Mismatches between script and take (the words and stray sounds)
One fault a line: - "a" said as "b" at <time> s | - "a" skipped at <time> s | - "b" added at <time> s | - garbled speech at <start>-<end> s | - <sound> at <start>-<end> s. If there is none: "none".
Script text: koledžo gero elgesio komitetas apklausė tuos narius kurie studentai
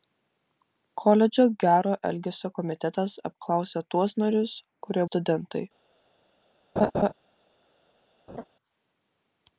- laugh at 6.8-7.1 s
- laugh at 8.3-8.4 s